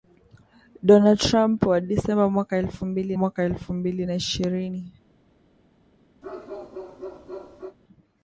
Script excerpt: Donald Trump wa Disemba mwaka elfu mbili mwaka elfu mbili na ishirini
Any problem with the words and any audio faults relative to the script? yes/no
yes